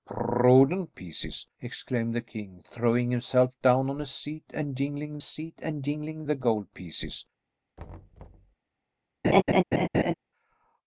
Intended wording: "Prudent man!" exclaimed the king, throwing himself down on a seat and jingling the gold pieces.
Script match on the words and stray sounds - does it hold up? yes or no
no